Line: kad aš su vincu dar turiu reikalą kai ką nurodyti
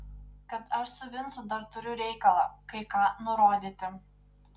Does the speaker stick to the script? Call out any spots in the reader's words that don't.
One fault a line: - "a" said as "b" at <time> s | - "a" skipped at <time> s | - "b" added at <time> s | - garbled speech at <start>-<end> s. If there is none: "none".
none